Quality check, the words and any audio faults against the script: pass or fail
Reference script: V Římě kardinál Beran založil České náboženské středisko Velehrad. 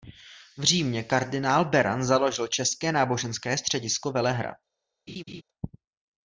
fail